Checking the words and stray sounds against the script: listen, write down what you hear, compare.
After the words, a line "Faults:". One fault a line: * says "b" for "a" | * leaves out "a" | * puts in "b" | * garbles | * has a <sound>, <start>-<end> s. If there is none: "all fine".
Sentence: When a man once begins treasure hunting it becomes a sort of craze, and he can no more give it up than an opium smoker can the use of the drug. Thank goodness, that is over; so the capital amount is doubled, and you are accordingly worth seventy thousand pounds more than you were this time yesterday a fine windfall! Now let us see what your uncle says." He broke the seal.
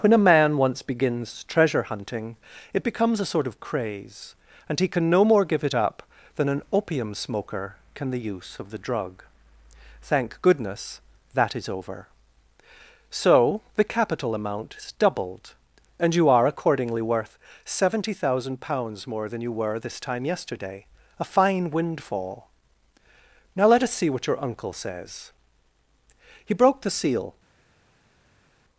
When a man once begins treasure hunting it becomes a sort of craze, and he can no more give it up than an opium smoker can the use of the drug. Thank goodness, that is over; so the capital amount is doubled, and you are accordingly worth seventy thousand pounds more than you were this time yesterday a fine windfall! Now let us see what your uncle says." He broke the seal.
Faults:
all fine